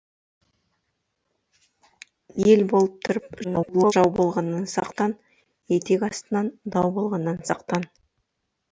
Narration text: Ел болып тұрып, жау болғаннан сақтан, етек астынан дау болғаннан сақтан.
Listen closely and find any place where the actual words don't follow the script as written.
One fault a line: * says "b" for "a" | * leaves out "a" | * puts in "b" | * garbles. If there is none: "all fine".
* garbles